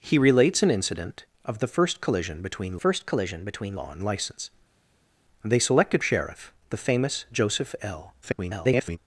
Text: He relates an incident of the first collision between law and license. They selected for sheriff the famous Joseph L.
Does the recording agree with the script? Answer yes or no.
no